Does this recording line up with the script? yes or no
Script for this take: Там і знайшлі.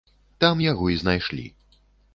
no